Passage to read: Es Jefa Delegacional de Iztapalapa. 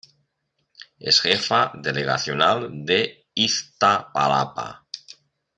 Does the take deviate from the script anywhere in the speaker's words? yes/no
no